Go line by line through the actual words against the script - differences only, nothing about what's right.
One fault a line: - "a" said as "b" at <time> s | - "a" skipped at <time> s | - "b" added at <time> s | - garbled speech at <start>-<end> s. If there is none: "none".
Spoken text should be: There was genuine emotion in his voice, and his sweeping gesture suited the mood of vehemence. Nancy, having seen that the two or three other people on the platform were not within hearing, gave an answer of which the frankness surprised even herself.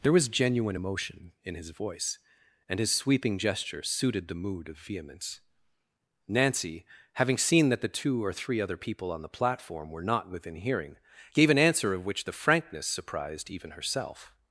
none